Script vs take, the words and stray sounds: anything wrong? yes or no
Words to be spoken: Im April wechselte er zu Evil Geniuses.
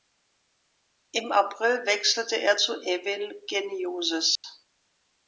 yes